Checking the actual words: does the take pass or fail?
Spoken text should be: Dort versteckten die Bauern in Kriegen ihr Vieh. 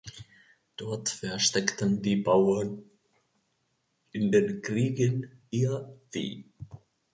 fail